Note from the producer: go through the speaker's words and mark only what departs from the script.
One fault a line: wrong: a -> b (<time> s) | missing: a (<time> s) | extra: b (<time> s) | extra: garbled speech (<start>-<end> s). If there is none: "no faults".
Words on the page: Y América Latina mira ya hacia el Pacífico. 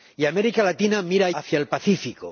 missing: ya (1.3 s)